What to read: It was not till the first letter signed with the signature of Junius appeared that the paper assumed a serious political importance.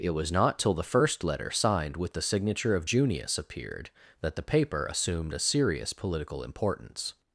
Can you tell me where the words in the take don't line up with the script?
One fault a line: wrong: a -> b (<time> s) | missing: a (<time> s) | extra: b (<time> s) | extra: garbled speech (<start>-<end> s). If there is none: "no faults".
no faults